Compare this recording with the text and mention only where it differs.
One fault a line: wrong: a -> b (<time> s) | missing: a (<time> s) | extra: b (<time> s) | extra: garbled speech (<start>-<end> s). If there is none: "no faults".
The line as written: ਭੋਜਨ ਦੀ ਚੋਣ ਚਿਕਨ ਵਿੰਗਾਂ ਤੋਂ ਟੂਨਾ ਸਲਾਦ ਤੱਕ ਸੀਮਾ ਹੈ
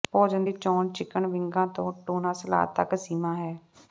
no faults